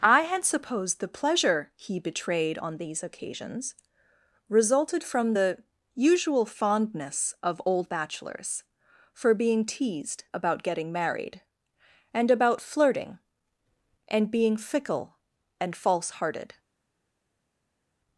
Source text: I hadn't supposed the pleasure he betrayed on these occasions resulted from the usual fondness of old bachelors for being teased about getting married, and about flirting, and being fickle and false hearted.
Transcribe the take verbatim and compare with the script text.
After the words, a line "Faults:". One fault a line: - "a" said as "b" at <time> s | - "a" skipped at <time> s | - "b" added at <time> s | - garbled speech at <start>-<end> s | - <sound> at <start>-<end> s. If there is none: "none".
I had supposed the pleasure he betrayed on these occasions resulted from the usual fondness of old bachelors for being teased about getting married, and about flirting, and being fickle and false hearted.
Faults:
- "hadn't" said as "had" at 0.2 s